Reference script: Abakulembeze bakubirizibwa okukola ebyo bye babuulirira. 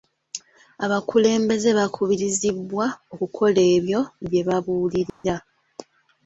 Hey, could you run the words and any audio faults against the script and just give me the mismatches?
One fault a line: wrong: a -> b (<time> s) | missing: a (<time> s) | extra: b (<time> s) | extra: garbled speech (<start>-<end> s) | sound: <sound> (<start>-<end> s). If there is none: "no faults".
sound: dropout (5.1-5.2 s)